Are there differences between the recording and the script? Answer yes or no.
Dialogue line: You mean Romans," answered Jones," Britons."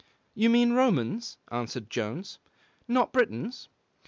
yes